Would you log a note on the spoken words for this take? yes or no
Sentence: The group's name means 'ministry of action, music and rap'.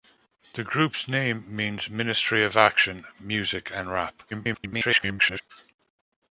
yes